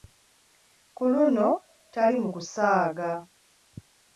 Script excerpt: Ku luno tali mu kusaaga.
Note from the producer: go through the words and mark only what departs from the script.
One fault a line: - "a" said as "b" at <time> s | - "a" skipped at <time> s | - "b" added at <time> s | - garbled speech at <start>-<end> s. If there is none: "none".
none